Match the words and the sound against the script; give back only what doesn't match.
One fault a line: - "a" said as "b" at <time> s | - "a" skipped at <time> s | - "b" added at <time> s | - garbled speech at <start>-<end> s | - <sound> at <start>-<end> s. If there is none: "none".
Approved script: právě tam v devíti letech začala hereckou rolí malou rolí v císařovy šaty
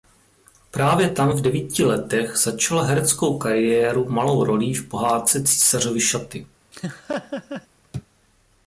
- "rolí" said as "kariéru" at 3.4 s
- "pohádce" added at 4.9 s
- laugh at 6.7-7.7 s